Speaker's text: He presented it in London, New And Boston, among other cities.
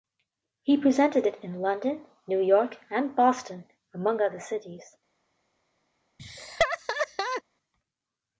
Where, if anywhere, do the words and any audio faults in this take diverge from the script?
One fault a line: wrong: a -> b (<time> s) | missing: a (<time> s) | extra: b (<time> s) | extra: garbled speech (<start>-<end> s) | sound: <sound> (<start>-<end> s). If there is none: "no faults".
extra: York (2.4 s)
sound: laugh (6.2-7.4 s)